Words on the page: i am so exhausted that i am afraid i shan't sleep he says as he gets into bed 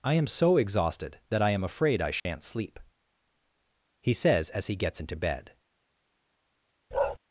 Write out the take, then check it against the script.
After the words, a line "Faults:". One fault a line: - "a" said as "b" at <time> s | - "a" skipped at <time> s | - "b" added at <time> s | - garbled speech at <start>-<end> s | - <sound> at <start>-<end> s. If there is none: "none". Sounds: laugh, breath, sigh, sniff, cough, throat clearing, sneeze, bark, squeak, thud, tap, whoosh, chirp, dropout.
i am so exhausted that i am afraid i shan't sleep he says as he gets into bed
Faults:
- dropout at 2.2-2.3 s
- bark at 6.9-7.2 s